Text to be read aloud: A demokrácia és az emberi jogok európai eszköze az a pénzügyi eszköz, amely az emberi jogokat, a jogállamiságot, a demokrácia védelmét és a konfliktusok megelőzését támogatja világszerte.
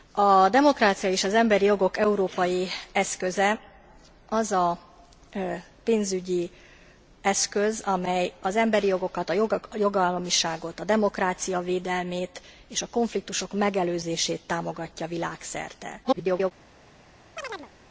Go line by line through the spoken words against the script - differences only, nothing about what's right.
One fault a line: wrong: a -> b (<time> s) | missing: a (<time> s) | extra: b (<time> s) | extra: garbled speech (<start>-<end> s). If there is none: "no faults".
extra: garbled speech (16.0-16.5 s)